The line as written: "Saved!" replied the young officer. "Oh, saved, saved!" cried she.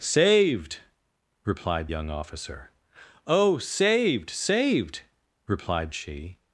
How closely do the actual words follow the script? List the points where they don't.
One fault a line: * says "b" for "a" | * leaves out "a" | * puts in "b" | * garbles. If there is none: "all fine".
* leaves out "the"
* says "replied" for "cried"